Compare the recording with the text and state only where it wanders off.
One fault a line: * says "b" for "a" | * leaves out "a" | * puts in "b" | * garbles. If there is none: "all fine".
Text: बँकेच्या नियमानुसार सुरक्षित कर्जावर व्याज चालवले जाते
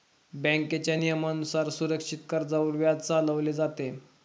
all fine